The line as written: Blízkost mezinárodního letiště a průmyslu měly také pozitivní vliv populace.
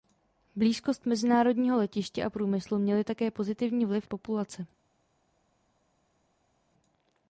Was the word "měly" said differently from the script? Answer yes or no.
no